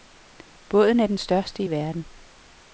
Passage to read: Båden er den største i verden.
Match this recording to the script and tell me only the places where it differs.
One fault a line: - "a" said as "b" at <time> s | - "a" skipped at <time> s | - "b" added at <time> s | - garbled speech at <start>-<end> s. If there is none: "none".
none